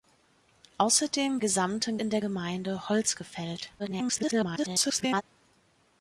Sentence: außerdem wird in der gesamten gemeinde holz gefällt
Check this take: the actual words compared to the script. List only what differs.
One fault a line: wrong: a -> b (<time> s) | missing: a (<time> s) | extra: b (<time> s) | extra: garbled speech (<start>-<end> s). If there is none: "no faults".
wrong: wird -> gesamten (1.4 s)
missing: gesamten (2.2 s)
extra: garbled speech (3.8-5.2 s)